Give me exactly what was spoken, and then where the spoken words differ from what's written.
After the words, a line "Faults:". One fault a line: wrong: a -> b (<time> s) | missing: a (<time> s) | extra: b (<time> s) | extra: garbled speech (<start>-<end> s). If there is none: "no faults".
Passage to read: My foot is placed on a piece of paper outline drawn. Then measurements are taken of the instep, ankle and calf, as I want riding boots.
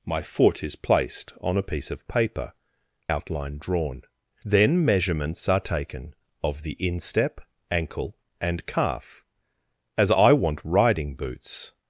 My foot is placed on a piece of paper outline drawn. Then measurements are taken of the instep, ankle and calf, as I want riding boots.
Faults:
no faults